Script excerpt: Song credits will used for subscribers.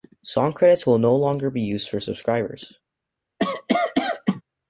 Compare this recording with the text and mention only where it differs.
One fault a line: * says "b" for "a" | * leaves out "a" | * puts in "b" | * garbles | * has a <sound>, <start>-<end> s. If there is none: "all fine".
* puts in "no longer be"
* has a cough, 3.4-4.4 s